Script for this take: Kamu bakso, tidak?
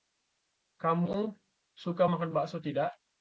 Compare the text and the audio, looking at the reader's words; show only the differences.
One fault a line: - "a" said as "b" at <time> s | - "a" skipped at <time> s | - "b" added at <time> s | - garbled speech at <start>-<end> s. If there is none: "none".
- "suka makan" added at 1.8 s